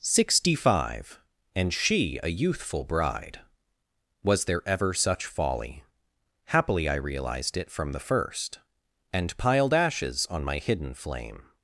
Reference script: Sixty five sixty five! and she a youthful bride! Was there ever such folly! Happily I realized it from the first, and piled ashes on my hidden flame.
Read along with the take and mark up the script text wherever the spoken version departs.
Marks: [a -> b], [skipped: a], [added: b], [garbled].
Sixty five [skipped: sixty five!] and she a youthful bride! Was there ever such folly! Happily I realized it from the first, and piled ashes on my hidden flame.